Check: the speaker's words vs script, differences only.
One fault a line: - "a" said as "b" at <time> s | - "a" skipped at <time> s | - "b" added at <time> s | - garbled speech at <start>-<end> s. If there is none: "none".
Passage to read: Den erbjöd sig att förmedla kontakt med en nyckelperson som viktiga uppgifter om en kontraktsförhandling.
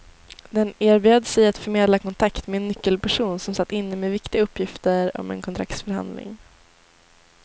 - "satt inne med" added at 3.5 s